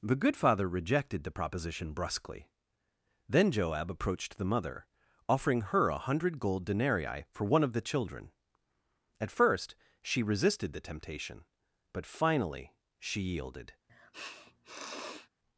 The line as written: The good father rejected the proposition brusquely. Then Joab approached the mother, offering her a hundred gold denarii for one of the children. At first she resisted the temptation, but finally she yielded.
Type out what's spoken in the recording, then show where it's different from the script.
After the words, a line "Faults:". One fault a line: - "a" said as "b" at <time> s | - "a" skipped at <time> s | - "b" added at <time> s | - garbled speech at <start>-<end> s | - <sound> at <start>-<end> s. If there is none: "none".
The good father rejected the proposition brusquely. Then Joab approached the mother, offering her a hundred gold denarii for one of the children. At first she resisted the temptation, but finally she yielded.
Faults:
- sniff at 13.9-15.3 s